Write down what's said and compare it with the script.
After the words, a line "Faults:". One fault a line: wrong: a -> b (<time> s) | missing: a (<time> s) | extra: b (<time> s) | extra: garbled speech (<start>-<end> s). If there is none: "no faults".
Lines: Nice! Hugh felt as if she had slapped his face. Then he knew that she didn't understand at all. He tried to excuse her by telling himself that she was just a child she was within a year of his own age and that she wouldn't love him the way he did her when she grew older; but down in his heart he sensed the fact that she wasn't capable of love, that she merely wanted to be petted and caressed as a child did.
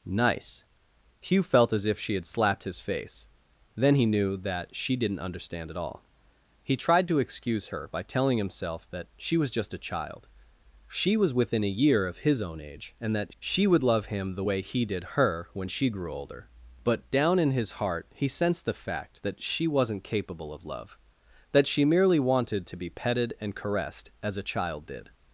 Nice! Hugh felt as if she had slapped his face. Then he knew that she didn't understand at all. He tried to excuse her by telling himself that she was just a child she was within a year of his own age and that she would love him the way he did her when she grew older; but down in his heart he sensed the fact that she wasn't capable of love, that she merely wanted to be petted and caressed as a child did.
Faults:
wrong: wouldn't -> would (13.7 s)